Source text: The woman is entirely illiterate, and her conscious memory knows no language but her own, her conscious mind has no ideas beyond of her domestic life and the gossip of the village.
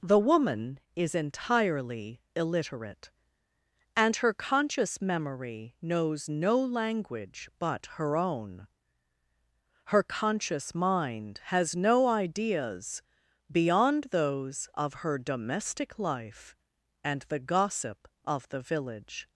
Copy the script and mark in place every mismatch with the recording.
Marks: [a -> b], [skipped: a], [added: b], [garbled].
The woman is entirely illiterate, and her conscious memory knows no language but her own, her conscious mind has no ideas beyond [added: those] of her domestic life and the gossip of the village.